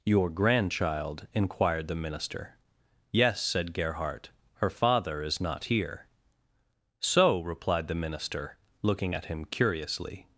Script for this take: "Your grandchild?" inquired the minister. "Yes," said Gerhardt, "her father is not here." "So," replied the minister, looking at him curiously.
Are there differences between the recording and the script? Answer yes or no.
no